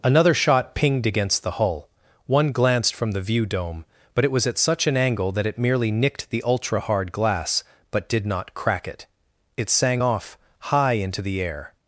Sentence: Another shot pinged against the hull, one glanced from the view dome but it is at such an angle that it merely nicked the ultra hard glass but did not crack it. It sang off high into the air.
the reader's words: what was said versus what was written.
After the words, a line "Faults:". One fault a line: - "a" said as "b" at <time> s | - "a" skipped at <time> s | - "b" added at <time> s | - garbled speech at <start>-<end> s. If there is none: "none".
Another shot pinged against the hull, one glanced from the view dome but it was at such an angle that it merely nicked the ultra hard glass but did not crack it. It sang off high into the air.
Faults:
- "is" said as "was" at 4.3 s